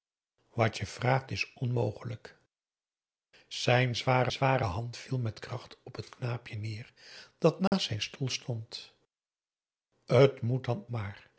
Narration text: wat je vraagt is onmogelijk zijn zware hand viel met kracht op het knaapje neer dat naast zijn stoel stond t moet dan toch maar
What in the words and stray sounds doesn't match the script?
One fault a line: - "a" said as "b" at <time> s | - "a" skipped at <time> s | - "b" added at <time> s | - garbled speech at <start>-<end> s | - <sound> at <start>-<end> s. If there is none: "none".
- "zware" added at 4.3 s
- dropout at 7.7-7.7 s
- "toch" skipped at 10.9 s